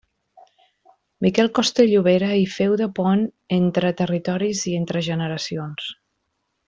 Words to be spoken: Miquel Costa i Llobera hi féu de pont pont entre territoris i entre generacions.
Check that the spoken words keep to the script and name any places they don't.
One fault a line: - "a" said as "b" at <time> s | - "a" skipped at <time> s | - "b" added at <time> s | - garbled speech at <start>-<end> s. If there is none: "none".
- "pont" skipped at 3.3 s